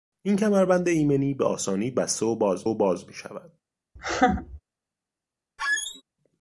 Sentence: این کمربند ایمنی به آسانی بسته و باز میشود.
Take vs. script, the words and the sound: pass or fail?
fail